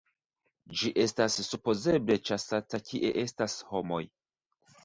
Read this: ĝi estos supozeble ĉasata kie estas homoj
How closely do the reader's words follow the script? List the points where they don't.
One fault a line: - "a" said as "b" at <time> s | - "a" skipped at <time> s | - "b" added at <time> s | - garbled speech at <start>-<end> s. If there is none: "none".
- "estos" said as "estas" at 1.0 s